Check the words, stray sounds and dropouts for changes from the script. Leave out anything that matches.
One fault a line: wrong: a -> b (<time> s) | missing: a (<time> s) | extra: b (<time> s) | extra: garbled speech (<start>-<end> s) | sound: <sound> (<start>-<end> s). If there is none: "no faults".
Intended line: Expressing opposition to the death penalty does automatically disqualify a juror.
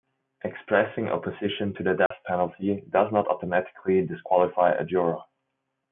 sound: dropout (2.1-2.1 s)
extra: not (3.1 s)